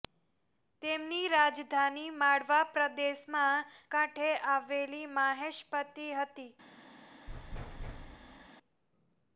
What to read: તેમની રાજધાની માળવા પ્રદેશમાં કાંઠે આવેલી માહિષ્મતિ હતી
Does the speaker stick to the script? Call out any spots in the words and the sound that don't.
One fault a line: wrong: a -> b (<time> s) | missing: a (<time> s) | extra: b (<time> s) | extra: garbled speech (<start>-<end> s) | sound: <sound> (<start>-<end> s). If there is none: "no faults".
sound: thud (7.3-8.5 s)